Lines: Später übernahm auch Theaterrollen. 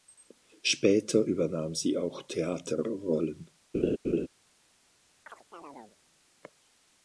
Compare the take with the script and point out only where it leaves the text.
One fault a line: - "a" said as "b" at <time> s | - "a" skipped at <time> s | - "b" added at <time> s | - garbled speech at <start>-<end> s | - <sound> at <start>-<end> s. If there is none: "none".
- "sie" added at 1.7 s
- laugh at 3.7-4.3 s
- chirp at 5.3-6.0 s